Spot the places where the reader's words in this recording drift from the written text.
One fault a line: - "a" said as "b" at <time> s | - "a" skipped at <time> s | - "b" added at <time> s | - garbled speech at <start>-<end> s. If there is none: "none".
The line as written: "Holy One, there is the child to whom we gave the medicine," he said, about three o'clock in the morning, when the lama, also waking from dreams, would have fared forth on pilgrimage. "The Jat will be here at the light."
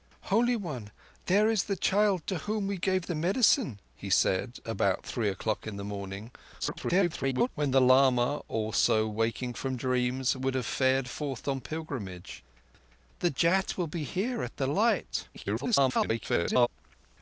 - garbled speech at 6.6-7.5 s
- garbled speech at 15.3-16.7 s